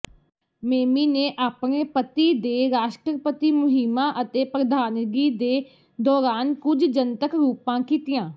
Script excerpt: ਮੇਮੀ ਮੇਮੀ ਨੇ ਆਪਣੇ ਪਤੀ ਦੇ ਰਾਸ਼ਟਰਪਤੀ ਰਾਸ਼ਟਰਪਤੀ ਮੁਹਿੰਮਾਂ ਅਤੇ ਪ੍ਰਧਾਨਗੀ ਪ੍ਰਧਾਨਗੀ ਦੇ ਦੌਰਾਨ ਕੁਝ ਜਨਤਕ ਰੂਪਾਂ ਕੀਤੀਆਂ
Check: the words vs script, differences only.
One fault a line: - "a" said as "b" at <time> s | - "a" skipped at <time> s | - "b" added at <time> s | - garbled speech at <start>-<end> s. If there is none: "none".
- "ਮੇਮੀ" skipped at 1.1 s
- "ਰਾਸ਼ਟਰਪਤੀ" skipped at 3.5 s
- "ਪ੍ਰਧਾਨਗੀ" skipped at 5.3 s